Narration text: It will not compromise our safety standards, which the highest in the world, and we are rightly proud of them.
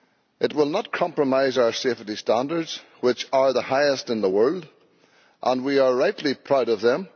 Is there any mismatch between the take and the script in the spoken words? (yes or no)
yes